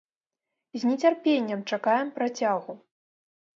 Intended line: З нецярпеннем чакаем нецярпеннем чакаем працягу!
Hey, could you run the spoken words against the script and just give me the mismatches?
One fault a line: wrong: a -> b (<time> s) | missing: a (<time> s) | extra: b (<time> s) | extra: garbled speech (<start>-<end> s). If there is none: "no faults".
missing: нецярпеннем чакаем (2.1 s)